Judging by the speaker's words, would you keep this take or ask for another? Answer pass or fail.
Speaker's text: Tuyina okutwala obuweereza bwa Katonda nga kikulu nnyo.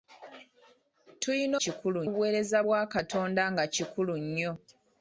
fail